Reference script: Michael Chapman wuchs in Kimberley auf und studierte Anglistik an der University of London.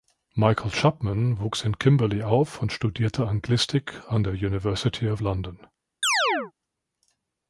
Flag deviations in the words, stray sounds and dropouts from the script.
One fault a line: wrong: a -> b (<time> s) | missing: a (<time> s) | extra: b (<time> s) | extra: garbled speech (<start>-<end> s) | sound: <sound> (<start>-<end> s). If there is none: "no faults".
sound: chirp (6.0-6.5 s)